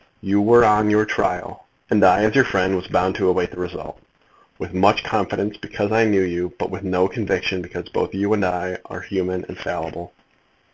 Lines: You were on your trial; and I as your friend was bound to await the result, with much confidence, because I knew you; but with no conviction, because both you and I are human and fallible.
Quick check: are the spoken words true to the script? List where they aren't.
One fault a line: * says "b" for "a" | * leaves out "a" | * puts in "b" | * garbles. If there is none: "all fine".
all fine